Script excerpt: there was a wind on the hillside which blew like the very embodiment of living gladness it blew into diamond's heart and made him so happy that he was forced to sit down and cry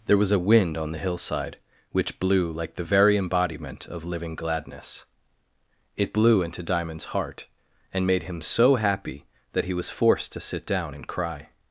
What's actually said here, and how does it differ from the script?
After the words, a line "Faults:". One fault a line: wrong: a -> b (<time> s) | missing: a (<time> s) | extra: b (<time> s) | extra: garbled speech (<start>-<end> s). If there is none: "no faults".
there was a wind on the hillside which blew like the very embodiment of living gladness it blew into diamond's heart and made him so happy that he was forced to sit down and cry
Faults:
no faults